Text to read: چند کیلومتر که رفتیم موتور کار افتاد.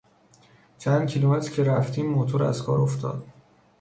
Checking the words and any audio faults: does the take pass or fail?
fail